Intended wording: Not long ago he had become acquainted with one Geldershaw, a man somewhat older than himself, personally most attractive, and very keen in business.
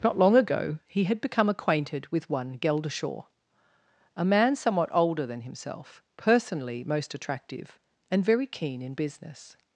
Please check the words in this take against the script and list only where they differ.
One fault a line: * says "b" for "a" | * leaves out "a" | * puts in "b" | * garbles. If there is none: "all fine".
all fine